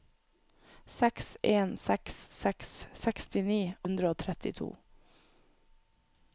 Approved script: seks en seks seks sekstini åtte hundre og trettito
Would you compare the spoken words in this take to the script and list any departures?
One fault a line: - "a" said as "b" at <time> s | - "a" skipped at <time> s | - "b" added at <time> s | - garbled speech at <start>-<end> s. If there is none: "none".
- "åtte" skipped at 3.6 s